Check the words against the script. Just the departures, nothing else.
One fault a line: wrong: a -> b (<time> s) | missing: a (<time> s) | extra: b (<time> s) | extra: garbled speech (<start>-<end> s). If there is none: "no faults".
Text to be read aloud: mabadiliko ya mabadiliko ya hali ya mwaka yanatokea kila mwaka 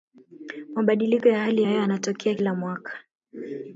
missing: mabadiliko ya (1.4 s)
wrong: mwaka -> hewa (1.7 s)